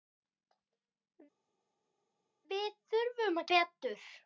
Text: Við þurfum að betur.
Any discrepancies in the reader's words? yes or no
no